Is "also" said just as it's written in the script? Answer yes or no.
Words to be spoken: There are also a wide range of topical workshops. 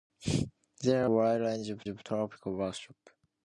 no